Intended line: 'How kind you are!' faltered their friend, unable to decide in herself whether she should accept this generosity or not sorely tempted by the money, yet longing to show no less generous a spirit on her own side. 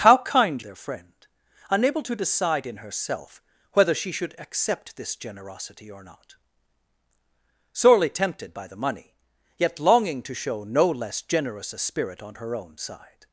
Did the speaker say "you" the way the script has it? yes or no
no